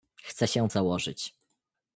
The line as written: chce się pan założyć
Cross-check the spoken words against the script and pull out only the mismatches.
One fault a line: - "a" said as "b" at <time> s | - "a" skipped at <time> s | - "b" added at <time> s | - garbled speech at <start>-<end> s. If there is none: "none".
- "pan" skipped at 0.7 s